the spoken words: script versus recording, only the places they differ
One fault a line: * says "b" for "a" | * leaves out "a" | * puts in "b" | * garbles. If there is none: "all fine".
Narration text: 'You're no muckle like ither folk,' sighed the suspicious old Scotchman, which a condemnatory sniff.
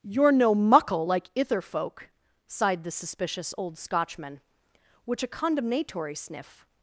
all fine